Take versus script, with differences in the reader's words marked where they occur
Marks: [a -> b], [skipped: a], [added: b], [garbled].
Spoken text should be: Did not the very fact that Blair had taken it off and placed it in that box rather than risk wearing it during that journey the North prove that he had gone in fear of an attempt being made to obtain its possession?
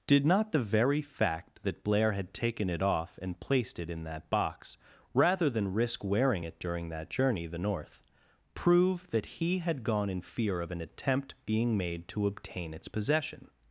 Did not the very fact that Blair had taken it off and placed it in that box rather than risk wearing it during that journey the North prove that he had gone in fear of an attempt being made to obtain its possession?